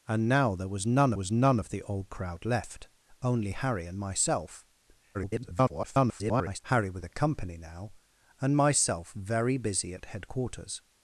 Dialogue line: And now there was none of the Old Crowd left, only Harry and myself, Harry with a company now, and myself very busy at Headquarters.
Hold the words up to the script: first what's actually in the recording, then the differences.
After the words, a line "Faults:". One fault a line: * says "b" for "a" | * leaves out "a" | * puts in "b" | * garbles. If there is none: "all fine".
And now there was none was none of the Old Crowd left, only Harry and myself, [garbled] Harry with a company now, and myself very busy at Headquarters.
Faults:
* puts in "was none"
* garbles